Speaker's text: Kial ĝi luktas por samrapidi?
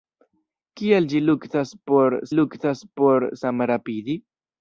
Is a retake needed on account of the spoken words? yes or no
yes